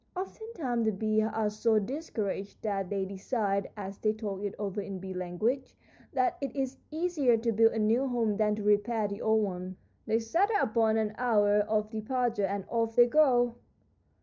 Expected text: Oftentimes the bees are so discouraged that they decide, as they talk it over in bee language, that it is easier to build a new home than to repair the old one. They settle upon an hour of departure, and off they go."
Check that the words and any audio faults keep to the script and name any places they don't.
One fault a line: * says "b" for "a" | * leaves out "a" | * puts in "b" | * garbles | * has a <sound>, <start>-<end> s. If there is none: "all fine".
all fine